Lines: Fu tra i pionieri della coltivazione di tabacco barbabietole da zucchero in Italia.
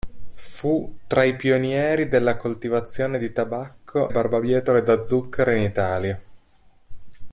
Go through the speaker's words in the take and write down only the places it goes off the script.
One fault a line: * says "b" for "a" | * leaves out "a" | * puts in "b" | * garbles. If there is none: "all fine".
all fine